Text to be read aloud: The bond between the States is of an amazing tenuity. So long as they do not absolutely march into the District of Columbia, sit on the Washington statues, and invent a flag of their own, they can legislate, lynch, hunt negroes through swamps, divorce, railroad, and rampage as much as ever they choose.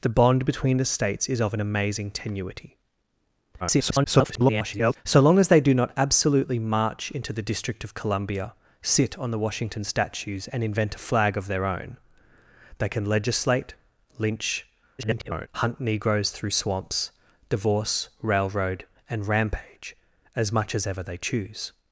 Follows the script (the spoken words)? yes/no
no